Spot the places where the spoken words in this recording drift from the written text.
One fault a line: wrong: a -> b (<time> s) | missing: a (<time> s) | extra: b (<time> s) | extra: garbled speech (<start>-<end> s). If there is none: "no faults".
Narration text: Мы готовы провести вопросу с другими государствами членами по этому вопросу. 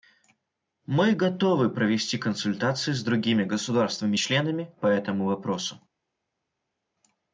wrong: вопросу -> консультации (2.2 s)